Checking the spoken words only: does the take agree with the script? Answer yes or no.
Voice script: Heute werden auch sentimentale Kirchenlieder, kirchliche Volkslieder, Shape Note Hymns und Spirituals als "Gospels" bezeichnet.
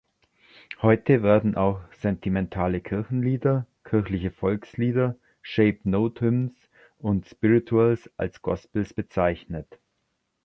yes